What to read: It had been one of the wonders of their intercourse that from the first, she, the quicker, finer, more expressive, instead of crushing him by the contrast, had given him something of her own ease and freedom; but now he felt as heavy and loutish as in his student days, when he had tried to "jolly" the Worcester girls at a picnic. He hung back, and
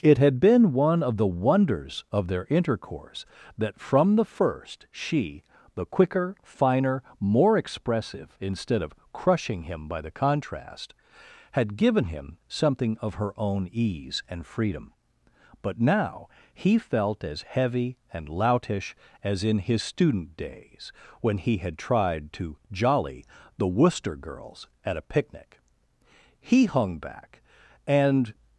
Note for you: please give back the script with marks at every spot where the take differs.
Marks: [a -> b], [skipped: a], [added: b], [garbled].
It had been one of the wonders of their intercourse that from the first, she, the quicker, finer, more expressive, instead of crushing him by the contrast, had given him something of her own ease and freedom; but now he felt as heavy and loutish as in his student days, when he had tried to "jolly" the Worcester girls at a picnic. He hung back, and